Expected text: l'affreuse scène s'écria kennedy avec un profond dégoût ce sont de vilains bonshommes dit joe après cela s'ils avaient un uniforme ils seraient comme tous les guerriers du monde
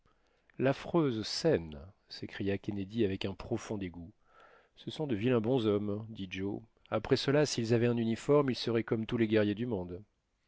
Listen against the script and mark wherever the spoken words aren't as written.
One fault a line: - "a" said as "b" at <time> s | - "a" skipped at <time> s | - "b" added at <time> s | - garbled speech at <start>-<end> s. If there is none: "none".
none